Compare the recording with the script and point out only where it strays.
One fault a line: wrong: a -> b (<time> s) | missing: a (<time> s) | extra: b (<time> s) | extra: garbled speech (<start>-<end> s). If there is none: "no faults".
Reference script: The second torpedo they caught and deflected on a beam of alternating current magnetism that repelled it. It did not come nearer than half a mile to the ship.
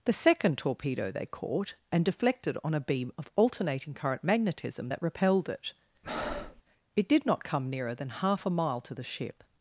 no faults